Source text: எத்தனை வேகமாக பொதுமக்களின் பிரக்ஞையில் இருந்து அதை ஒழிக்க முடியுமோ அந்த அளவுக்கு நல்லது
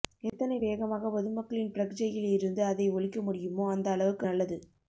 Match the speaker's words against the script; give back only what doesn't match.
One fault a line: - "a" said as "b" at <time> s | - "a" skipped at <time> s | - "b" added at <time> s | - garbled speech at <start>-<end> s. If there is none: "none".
none